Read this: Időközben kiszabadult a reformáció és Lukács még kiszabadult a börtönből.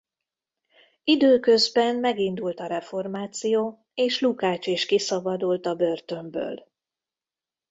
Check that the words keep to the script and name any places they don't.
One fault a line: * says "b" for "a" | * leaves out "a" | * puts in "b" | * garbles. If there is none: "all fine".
* says "megindult" for "kiszabadult"
* says "is" for "még"